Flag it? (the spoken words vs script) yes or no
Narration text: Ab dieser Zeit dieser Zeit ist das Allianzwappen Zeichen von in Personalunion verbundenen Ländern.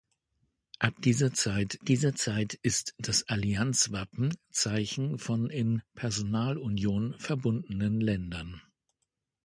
no